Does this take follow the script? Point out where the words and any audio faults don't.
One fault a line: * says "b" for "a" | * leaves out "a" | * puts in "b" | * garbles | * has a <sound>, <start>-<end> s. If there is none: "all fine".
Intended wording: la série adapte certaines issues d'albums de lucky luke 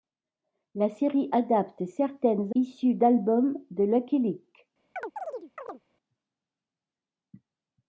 * has a chirp, 5.0-5.8 s